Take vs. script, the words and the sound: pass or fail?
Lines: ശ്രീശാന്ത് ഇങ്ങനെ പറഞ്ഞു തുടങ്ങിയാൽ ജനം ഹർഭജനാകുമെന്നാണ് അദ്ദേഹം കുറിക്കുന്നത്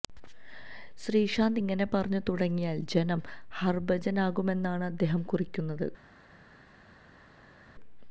pass